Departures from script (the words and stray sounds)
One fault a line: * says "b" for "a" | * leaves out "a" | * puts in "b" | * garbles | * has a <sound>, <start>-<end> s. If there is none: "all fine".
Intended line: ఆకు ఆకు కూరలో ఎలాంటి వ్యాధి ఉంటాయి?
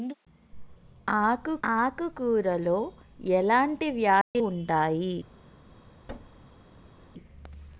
* has a dropout, 4.2-4.4 s
* has a thud, 6.1-7.1 s